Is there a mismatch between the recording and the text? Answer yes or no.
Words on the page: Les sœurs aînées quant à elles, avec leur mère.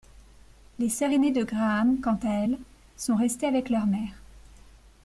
yes